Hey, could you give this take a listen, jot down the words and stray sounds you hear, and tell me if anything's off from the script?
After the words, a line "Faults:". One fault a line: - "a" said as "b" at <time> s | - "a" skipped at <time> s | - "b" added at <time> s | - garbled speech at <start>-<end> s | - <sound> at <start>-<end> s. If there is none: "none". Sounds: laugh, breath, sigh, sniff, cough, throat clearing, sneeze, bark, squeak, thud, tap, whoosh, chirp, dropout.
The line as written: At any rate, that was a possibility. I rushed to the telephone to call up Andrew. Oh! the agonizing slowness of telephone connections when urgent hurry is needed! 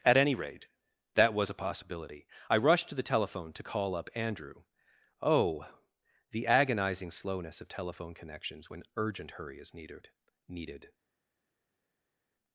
At any rate, that was a possibility. I rushed to the telephone to call up Andrew. Oh! the agonizing slowness of telephone connections when urgent hurry is needed needed!
Faults:
- "needed" added at 10.5 s